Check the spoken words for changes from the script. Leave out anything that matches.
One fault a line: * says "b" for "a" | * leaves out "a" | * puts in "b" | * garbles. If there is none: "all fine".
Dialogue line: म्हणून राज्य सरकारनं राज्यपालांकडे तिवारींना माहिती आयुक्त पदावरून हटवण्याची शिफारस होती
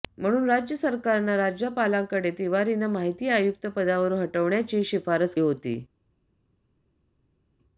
all fine